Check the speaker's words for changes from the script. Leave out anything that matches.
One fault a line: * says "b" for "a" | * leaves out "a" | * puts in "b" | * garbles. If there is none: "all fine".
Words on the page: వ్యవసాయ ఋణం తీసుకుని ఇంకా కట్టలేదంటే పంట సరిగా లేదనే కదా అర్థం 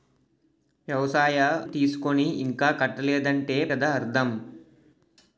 * leaves out "ఋణం"
* leaves out "పంట సరిగా లేదనే"